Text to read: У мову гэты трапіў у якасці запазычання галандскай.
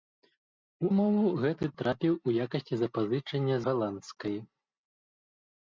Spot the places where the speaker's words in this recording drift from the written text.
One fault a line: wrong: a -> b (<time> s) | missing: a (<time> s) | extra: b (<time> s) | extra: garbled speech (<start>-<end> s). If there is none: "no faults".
no faults